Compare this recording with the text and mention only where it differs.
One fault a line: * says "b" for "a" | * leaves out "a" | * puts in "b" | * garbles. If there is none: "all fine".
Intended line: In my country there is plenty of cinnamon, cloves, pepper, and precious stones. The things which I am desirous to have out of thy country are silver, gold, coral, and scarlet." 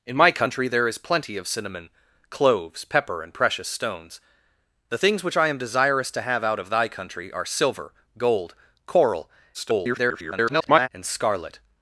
* garbles